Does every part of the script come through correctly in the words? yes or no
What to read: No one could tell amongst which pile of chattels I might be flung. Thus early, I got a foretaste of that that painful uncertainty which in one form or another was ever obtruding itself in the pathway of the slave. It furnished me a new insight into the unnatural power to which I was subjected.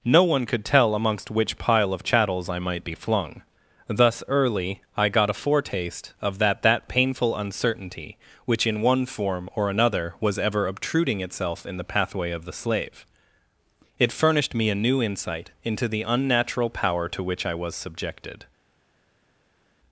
yes